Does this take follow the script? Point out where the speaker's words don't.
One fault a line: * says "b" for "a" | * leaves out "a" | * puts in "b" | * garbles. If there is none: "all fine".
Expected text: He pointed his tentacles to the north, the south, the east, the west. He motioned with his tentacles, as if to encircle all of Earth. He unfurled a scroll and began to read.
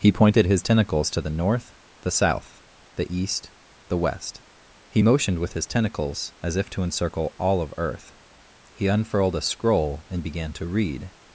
all fine